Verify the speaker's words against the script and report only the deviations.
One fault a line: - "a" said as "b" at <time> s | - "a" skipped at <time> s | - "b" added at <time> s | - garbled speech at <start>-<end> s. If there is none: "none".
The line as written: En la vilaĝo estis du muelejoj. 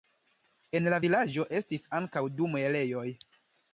- "ankaŭ" added at 2.0 s